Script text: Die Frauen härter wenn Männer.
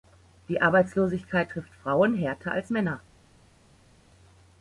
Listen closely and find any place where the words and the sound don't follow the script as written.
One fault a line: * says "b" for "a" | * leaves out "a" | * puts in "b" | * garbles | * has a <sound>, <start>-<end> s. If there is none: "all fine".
* puts in "Arbeitslosigkeit trifft"
* says "als" for "wenn"